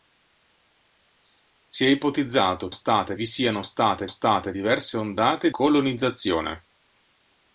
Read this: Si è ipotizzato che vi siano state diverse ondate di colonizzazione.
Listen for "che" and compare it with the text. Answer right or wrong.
wrong